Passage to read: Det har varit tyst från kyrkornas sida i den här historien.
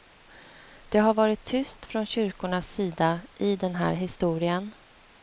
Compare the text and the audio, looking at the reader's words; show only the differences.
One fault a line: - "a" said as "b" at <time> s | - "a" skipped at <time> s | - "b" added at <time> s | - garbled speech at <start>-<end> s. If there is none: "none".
none